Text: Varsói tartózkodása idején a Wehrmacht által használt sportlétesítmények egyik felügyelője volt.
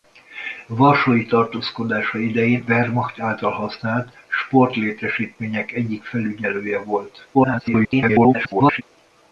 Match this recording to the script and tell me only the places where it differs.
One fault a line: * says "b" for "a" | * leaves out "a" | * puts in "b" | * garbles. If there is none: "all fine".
* leaves out "a"
* garbles